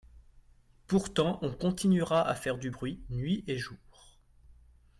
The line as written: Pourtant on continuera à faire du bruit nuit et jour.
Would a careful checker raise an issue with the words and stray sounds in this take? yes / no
no